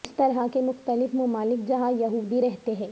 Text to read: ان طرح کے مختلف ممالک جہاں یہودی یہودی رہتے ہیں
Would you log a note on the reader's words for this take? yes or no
yes